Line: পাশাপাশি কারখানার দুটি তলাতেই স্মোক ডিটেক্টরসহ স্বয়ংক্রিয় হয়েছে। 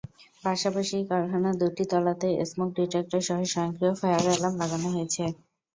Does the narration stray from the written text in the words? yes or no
yes